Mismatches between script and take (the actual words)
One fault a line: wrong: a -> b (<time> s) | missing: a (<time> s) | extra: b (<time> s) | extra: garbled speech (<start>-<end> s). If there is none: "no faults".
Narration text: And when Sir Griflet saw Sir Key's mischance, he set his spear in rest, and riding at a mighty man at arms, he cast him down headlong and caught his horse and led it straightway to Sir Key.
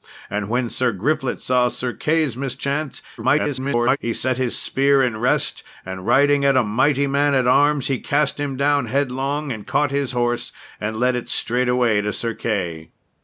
extra: garbled speech (3.2-4.0 s)